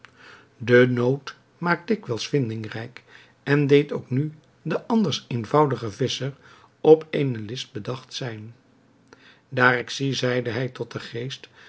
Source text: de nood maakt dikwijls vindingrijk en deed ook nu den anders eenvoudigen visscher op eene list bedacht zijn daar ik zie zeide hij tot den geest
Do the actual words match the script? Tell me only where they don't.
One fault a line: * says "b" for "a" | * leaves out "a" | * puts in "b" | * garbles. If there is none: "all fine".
all fine